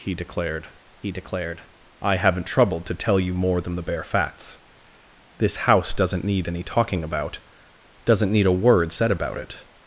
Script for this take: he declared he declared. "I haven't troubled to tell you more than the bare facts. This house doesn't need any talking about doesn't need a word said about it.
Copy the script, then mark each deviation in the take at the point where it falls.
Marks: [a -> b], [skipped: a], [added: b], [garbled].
he declared he declared. "I haven't troubled to tell you more than the bare facts. This house doesn't need any talking about doesn't need a word said about it.